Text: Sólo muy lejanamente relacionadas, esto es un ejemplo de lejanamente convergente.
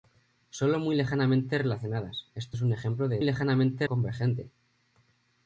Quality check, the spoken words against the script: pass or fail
pass